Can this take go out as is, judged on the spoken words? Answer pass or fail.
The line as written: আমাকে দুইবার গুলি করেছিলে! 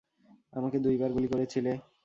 pass